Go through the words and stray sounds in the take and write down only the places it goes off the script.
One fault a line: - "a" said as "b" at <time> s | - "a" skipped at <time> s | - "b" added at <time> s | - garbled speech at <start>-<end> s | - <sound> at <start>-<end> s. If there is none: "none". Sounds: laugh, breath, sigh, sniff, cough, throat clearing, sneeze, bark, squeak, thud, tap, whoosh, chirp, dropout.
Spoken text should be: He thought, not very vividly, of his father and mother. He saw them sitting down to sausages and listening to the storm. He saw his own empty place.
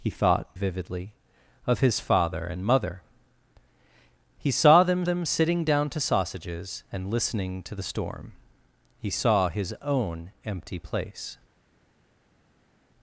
- "not very" skipped at 0.5 s
- "them" added at 5.0 s